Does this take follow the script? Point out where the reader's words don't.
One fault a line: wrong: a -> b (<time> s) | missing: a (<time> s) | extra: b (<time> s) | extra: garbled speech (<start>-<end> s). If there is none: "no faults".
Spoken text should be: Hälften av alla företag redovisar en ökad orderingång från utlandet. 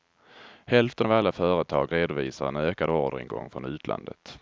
no faults